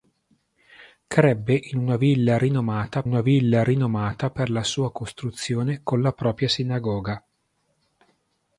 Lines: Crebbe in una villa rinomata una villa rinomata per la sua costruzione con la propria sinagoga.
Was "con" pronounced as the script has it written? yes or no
yes